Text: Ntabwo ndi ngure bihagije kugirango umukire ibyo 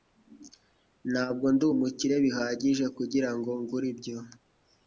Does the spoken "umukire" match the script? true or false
false